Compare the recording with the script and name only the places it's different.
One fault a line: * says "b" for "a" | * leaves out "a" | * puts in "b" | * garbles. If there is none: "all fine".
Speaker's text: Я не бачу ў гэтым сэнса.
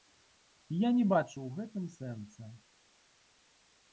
all fine